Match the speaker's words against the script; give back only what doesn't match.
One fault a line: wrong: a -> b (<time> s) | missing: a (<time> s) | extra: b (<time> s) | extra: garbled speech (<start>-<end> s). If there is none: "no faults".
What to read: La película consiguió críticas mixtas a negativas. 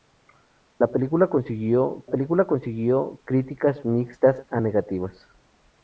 extra: película consiguió (2.1 s)